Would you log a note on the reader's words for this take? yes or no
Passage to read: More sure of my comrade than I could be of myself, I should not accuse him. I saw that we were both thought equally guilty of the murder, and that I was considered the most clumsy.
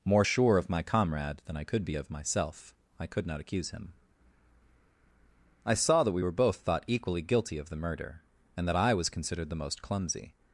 yes